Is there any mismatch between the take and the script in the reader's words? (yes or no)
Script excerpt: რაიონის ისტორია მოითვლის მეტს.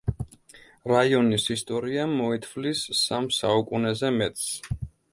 yes